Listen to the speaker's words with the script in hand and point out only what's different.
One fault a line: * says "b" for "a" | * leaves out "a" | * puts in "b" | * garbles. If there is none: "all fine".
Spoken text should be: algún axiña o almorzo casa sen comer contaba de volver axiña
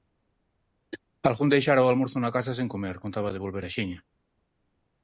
* says "deixara" for "axiña"
* puts in "na"